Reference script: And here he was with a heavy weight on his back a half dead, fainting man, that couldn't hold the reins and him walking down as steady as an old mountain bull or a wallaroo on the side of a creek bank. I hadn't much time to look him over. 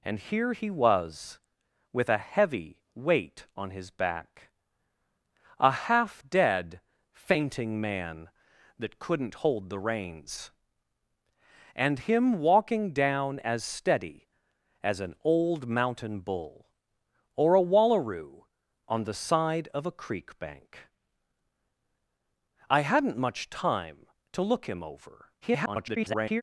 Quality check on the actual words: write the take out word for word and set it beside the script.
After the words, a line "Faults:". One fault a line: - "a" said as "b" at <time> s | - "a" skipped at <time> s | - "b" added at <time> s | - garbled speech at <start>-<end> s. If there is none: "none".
And here he was with a heavy weight on his back a half dead, fainting man, that couldn't hold the reins and him walking down as steady as an old mountain bull or a wallaroo on the side of a creek bank. I hadn't much time to look him over. [garbled]
Faults:
- garbled speech at 25.4-26.4 s